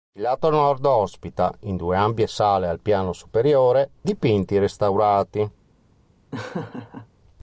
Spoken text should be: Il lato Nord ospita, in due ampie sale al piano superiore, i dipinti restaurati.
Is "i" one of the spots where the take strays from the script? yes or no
yes